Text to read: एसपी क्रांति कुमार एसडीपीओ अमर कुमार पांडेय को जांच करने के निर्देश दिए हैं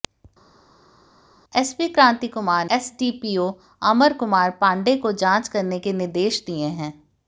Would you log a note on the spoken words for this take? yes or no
no